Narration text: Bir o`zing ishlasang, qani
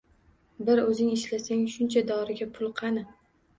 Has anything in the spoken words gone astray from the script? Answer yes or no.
yes